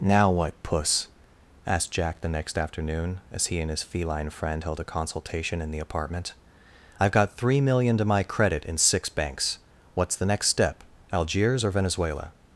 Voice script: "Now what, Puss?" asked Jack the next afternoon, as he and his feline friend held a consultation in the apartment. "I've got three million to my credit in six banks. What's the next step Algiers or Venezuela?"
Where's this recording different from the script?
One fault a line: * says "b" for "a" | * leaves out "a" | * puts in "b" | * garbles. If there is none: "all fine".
all fine